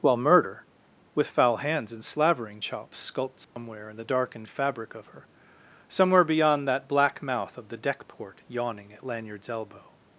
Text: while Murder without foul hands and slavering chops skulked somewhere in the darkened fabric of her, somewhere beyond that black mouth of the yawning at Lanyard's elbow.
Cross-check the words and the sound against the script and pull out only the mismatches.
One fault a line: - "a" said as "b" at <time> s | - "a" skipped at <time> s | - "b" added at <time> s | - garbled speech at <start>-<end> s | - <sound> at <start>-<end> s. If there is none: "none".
- "without" said as "with" at 1.1 s
- dropout at 3.4-3.6 s
- "deck port" added at 7.8 s